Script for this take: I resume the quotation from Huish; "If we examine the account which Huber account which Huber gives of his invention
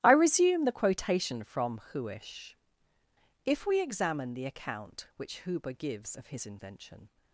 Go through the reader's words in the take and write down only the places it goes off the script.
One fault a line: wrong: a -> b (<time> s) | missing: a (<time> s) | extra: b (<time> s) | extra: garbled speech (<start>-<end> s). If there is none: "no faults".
missing: account which Huber (5.7 s)